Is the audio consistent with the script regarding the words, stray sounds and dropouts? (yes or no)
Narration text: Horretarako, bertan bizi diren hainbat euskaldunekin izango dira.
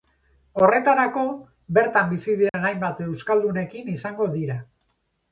no